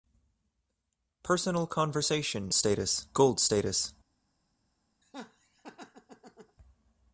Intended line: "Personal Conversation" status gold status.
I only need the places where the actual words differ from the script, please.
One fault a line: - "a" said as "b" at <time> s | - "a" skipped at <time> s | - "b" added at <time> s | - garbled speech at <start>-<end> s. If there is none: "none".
none